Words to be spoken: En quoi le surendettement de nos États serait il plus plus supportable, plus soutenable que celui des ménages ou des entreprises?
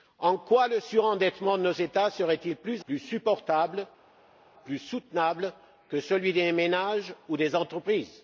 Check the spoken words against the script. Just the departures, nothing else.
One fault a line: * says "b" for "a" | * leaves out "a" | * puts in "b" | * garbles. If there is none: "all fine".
all fine